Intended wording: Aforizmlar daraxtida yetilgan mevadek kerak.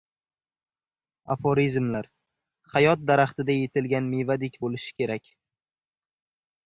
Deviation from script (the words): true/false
true